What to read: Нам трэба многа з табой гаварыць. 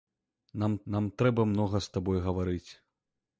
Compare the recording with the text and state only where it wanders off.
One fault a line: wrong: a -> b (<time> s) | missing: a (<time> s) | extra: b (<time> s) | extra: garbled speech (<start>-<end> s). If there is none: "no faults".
extra: нам (0.9 s)